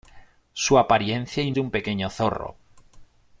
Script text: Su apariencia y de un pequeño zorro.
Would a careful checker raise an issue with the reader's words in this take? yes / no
no